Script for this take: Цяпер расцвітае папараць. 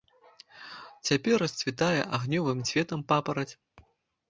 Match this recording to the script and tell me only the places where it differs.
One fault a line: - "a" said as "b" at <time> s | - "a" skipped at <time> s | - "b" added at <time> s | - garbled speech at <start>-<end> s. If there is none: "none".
- "агнёвым цветам" added at 2.2 s